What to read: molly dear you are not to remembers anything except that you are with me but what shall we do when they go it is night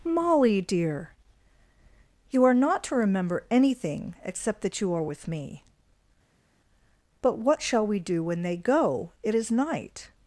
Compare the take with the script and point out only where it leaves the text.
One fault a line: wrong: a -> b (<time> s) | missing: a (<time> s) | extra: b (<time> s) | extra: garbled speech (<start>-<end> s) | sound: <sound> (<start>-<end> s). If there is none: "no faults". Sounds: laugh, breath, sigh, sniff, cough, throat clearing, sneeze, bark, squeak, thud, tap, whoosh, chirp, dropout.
wrong: remembers -> remember (3.0 s)